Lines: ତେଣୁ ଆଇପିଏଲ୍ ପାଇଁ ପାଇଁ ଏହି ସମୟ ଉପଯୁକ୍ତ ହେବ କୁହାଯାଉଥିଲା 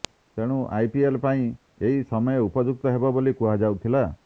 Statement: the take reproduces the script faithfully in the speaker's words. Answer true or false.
false